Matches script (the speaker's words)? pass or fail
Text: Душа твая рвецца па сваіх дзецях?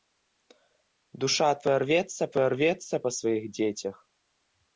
fail